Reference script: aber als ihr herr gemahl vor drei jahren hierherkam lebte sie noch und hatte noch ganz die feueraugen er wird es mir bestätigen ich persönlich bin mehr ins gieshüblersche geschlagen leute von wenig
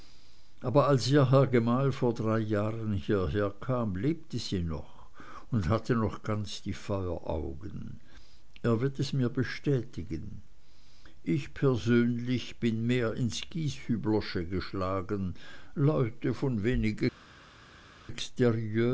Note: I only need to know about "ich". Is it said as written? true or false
true